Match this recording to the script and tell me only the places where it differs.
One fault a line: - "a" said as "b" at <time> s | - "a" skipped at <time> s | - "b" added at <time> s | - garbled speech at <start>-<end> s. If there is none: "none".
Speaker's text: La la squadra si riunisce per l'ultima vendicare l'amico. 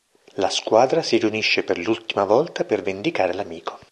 - "la" skipped at 0.5 s
- "volta per" added at 2.2 s